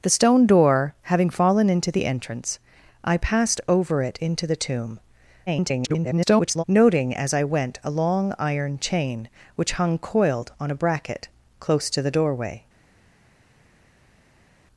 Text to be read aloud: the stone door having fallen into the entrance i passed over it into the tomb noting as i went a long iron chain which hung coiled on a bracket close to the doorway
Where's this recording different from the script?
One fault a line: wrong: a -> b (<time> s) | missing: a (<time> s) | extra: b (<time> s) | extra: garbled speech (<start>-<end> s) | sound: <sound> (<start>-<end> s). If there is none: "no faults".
extra: garbled speech (5.5-6.6 s)